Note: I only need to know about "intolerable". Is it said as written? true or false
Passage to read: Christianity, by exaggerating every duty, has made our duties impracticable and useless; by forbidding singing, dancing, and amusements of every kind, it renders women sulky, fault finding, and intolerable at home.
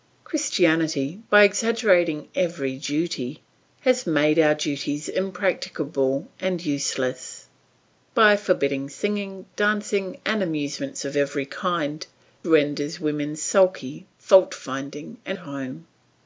false